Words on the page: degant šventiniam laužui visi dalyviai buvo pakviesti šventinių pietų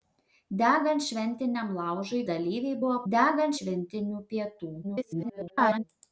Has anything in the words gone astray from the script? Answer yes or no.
yes